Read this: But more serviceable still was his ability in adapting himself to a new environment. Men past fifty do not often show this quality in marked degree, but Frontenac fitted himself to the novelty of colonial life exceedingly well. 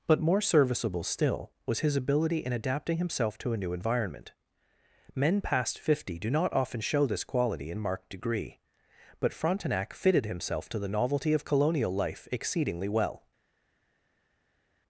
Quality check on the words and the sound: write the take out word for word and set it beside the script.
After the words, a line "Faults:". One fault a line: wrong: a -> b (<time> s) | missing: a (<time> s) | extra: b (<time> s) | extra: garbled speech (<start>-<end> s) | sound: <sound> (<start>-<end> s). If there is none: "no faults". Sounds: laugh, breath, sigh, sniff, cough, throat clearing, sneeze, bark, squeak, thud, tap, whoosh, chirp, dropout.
But more serviceable still was his ability in adapting himself to a new environment. Men past fifty do not often show this quality in marked degree, but Frontenac fitted himself to the novelty of colonial life exceedingly well.
Faults:
no faults